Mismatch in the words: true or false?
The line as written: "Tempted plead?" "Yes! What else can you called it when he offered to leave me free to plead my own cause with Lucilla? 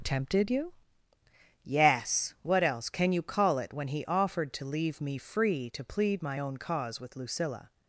true